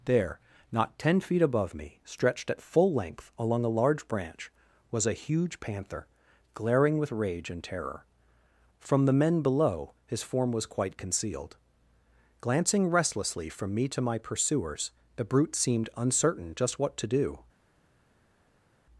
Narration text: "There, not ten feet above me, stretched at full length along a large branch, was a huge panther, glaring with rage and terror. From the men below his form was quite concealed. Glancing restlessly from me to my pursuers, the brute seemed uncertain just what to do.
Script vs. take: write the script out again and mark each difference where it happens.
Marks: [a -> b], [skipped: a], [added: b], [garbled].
"There, not ten feet above me, stretched at full length along a large branch, was a huge panther, glaring with rage and terror. From the men below his form was quite concealed. Glancing restlessly from me to my pursuers, the brute seemed uncertain just what to do.